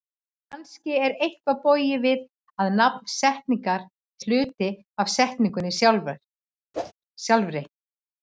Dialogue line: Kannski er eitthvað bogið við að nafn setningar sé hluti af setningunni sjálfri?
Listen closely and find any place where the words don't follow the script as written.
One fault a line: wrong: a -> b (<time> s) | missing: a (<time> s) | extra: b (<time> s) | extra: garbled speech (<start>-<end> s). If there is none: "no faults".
missing: sé (3.9 s)